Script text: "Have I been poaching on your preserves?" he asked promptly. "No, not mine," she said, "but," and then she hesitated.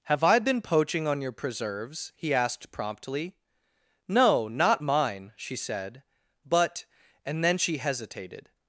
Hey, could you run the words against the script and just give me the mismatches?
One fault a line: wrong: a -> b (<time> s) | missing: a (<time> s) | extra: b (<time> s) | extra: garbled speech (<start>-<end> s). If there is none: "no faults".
no faults